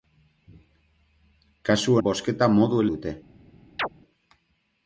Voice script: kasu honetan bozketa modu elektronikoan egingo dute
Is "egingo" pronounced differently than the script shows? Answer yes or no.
yes